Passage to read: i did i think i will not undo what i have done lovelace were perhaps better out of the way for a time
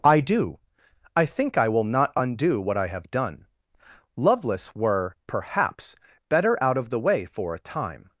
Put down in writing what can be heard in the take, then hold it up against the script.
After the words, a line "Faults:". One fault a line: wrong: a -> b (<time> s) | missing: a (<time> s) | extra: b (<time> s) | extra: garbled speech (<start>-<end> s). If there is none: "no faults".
i do i think i will not undo what i have done lovelace were perhaps better out of the way for a time
Faults:
wrong: did -> do (0.2 s)